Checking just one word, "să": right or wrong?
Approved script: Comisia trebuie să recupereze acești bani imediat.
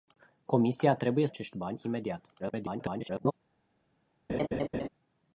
wrong